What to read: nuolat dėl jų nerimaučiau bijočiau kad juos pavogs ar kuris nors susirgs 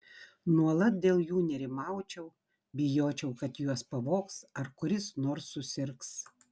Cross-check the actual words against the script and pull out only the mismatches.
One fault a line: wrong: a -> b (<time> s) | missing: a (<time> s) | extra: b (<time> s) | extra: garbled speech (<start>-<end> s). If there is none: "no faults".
no faults